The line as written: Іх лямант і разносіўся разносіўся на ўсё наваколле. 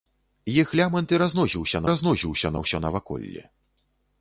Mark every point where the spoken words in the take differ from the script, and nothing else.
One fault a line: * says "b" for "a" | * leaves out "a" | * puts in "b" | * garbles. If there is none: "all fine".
all fine